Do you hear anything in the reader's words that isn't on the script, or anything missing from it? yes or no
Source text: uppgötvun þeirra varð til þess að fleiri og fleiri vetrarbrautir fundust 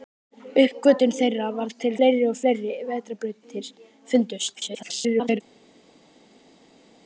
yes